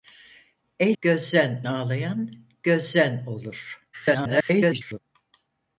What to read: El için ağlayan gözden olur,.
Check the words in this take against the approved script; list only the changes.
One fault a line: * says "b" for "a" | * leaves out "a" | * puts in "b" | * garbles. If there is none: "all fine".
* says "gözden" for "için"
* garbles